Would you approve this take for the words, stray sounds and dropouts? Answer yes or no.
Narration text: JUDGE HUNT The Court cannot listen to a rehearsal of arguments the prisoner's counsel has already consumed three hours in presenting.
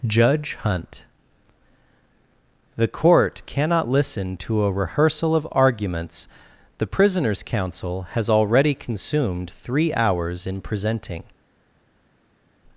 yes